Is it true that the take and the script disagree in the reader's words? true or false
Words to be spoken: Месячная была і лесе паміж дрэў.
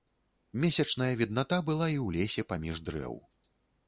true